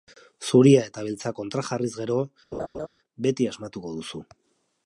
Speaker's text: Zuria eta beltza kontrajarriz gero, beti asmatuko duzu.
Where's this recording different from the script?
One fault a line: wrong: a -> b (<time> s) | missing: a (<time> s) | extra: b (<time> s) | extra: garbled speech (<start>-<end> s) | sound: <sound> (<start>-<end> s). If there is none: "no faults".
sound: laugh (2.5-2.9 s)